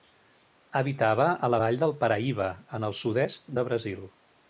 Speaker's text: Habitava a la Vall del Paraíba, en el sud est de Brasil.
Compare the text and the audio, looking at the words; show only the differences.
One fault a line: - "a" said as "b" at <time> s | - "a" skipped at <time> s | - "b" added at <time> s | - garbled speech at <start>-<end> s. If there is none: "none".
none